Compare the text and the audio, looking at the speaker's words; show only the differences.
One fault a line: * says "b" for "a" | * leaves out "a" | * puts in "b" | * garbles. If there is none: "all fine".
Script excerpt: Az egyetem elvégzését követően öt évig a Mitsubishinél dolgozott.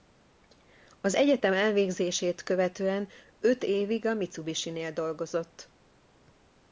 all fine